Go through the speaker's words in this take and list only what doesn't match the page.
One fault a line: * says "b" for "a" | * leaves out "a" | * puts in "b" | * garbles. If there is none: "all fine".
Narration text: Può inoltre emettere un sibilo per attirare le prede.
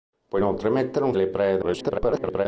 * leaves out "sibilo per attirare"
* garbles